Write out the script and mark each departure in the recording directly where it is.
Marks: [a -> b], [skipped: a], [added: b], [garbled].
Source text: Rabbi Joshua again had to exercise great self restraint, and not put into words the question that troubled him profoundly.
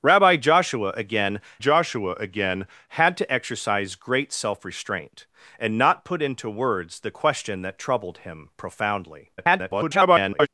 Rabbi Joshua again [added: Joshua again] had to exercise great self restraint, and not put into words the question that troubled him profoundly. [garbled]